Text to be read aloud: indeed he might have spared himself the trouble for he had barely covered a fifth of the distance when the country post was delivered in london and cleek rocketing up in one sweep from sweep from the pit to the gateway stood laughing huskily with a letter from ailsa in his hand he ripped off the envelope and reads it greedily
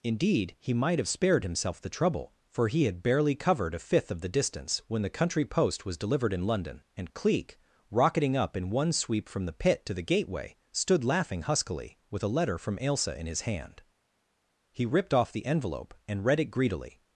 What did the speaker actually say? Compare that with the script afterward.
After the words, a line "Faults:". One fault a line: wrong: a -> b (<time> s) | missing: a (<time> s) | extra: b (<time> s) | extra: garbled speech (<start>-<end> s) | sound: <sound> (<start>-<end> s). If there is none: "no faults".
indeed he might have spared himself the trouble for he had barely covered a fifth of the distance when the country post was delivered in london and cleek rocketing up in one sweep from the pit to the gateway stood laughing huskily with a letter from ailsa in his hand he ripped off the envelope and read it greedily
Faults:
missing: sweep from (9.4 s)
wrong: reads -> read (16.2 s)